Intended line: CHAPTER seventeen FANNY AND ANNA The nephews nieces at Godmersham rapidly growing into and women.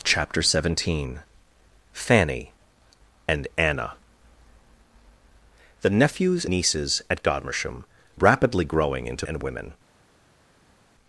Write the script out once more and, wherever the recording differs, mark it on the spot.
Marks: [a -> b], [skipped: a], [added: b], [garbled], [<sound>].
CHAPTER seventeen FANNY AND ANNA The nephews nieces at Godmersham rapidly growing into and women.